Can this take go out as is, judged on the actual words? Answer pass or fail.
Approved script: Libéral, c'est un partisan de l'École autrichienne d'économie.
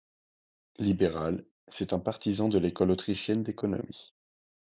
pass